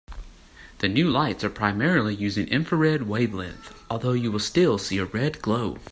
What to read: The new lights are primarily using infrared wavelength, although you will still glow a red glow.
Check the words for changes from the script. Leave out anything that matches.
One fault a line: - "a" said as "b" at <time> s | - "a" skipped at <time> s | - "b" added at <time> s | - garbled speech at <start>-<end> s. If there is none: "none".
- "glow" said as "see" at 4.8 s